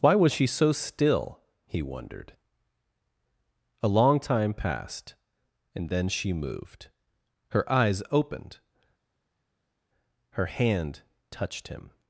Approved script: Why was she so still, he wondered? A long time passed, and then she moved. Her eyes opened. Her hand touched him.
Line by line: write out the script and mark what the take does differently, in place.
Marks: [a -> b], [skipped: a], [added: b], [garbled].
Why was she so still, he wondered? A long time passed, and then she moved. Her eyes opened. Her hand touched him.